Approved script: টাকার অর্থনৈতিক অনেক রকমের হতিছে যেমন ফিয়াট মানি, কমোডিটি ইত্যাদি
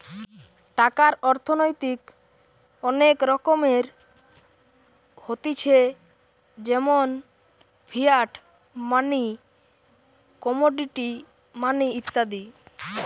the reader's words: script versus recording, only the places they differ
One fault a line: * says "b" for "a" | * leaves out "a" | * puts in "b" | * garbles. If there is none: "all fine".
* puts in "মানি"